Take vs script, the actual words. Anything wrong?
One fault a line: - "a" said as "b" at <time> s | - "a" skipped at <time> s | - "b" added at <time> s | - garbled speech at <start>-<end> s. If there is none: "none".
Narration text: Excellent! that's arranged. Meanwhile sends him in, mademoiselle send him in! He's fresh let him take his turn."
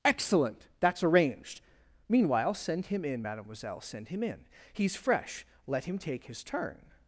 - "sends" said as "send" at 2.5 s